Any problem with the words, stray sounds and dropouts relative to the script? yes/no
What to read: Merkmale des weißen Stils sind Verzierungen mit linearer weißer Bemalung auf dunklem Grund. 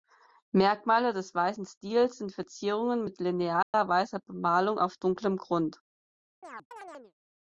yes